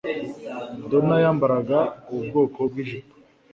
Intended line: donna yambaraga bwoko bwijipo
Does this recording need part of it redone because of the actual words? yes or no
yes